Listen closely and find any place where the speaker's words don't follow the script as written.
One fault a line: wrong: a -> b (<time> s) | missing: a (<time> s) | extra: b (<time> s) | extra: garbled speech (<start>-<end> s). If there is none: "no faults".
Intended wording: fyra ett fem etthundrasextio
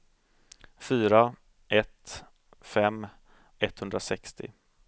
no faults